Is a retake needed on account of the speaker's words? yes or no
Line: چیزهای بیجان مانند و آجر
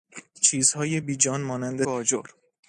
no